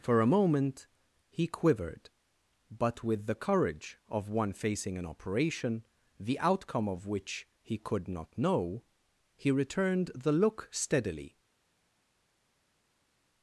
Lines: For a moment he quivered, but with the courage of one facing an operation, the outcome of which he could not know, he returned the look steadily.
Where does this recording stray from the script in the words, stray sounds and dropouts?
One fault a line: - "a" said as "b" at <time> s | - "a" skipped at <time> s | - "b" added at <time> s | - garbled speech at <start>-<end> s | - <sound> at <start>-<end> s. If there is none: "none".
none